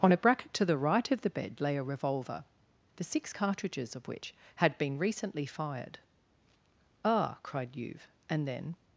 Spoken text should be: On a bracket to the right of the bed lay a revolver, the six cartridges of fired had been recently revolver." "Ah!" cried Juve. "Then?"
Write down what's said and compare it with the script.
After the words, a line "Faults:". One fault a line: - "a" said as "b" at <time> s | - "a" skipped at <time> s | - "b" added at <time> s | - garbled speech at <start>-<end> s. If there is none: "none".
On a bracket to the right of the bed lay a revolver, the six cartridges of which had been recently fired." "Ah!" cried Juve. "And then?"
Faults:
- "fired" said as "which" at 4.1 s
- "revolver" said as "fired" at 5.5 s
- "And" added at 8.3 s